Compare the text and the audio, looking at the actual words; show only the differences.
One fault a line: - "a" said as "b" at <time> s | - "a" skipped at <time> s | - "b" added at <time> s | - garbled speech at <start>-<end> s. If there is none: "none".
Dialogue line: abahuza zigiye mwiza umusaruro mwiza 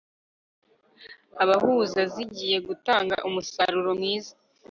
- "mwiza" said as "gutanga" at 2.7 s